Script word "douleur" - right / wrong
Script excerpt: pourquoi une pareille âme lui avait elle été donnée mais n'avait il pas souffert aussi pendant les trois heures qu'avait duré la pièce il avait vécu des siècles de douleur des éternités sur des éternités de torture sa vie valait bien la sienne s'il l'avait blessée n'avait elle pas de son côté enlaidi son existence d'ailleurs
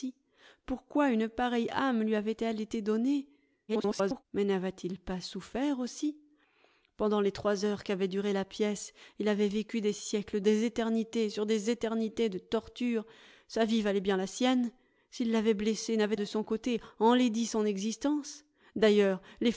wrong